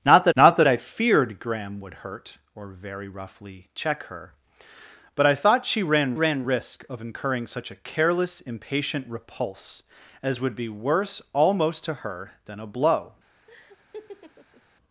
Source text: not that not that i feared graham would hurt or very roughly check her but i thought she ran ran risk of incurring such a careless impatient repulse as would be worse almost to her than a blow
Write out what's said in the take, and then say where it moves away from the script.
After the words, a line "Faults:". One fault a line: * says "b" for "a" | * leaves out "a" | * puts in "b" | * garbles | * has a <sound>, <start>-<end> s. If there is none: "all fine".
not that not that i feared graham would hurt or very roughly check her but i thought she ran ran risk of incurring such a careless impatient repulse as would be worse almost to her than a blow
Faults:
* has a laugh, 13.5-14.6 s